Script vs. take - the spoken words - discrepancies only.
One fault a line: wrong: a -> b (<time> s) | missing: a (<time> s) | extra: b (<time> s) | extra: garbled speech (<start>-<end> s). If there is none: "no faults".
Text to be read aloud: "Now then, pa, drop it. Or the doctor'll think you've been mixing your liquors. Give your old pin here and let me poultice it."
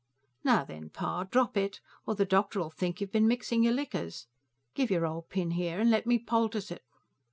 no faults